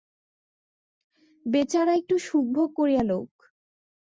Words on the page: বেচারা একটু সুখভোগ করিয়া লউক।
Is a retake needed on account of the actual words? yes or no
no